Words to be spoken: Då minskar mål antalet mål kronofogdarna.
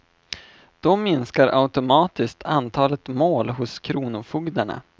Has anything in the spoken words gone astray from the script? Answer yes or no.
yes